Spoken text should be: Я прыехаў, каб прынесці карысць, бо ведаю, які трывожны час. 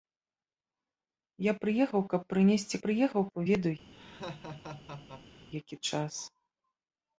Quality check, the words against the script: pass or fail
fail